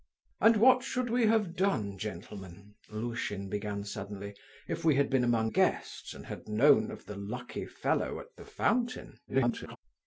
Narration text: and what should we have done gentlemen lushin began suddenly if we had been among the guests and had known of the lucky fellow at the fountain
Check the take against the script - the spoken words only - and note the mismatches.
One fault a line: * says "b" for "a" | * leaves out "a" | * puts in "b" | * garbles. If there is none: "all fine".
* leaves out "the"
* garbles